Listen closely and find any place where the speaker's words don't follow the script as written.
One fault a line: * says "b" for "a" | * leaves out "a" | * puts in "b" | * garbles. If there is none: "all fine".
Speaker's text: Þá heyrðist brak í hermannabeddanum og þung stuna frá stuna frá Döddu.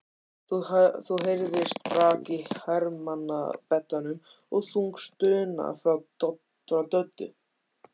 * leaves out "stuna frá"